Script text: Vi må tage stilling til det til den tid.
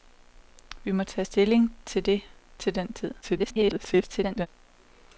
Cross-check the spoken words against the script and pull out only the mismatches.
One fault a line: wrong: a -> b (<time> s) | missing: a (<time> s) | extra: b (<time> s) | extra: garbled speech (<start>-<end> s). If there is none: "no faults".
extra: garbled speech (3.2-4.5 s)